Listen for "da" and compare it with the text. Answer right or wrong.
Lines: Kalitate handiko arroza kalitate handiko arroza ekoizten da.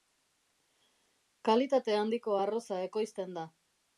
right